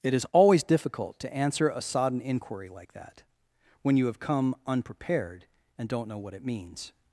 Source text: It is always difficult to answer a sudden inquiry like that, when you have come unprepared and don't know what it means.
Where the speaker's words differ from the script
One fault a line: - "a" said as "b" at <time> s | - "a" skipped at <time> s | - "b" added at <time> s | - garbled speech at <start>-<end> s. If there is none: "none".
- "sudden" said as "sodden" at 1.8 s